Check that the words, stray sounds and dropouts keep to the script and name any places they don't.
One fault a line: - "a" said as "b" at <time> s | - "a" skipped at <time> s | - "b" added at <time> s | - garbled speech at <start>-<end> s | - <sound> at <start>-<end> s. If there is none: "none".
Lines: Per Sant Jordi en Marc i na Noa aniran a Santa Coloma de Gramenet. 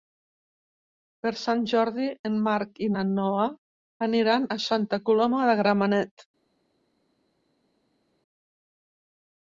none